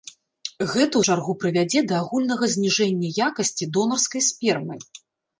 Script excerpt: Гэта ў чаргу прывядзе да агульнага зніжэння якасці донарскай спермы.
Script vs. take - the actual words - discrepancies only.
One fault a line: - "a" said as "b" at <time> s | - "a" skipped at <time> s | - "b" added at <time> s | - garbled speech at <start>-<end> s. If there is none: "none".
none